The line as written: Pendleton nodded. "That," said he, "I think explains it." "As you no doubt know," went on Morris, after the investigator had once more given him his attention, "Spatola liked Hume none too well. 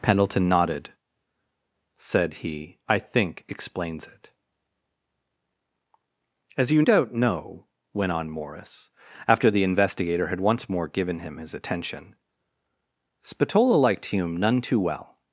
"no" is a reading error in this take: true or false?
true